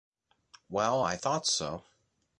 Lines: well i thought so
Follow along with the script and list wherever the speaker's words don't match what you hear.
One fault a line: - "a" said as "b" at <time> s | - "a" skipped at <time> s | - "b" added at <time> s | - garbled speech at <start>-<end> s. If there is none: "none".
none